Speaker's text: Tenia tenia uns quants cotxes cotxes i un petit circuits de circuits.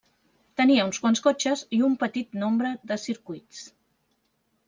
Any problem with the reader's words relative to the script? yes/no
yes